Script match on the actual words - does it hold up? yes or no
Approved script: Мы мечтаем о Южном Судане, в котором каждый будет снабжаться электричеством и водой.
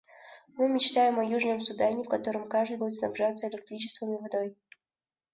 yes